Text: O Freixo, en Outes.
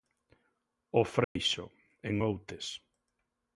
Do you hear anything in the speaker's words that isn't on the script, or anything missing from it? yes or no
no